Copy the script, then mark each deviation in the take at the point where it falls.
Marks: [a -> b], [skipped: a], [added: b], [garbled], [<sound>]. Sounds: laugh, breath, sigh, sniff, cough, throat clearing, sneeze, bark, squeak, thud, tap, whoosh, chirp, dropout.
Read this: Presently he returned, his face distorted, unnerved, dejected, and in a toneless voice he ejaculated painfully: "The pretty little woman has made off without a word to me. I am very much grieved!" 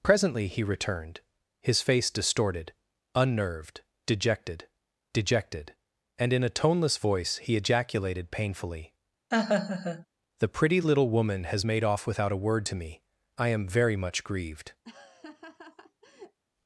Presently he returned, his face distorted, unnerved, dejected, [added: dejected] and in a toneless voice he ejaculated painfully: [laugh] "The pretty little woman has made off without a word to me. I am very much grieved!" [laugh]